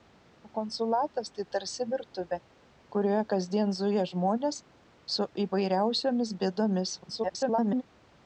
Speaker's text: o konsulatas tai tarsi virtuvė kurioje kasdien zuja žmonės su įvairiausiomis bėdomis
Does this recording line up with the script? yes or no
no